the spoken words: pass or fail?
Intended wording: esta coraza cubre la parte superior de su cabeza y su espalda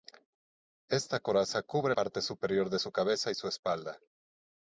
fail